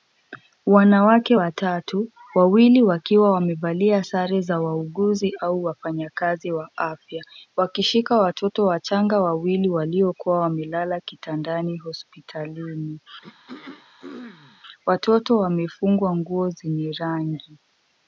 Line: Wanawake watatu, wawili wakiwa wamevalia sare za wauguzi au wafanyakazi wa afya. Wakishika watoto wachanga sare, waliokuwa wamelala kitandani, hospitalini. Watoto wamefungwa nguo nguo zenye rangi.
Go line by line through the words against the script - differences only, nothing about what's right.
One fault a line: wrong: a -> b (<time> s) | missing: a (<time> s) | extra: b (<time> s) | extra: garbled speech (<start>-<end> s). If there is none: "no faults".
wrong: sare -> wawili (9.2 s)
missing: nguo (16.5 s)